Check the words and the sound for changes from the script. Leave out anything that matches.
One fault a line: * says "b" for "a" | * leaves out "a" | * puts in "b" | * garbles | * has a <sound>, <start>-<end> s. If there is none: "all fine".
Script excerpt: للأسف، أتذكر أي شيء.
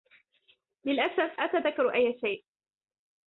all fine